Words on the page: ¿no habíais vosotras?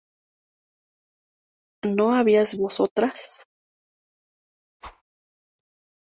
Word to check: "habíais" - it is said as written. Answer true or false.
true